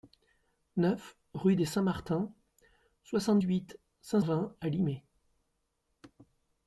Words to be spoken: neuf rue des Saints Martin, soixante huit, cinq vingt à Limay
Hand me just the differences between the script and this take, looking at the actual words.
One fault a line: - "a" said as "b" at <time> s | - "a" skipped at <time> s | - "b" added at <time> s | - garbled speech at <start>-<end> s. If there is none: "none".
none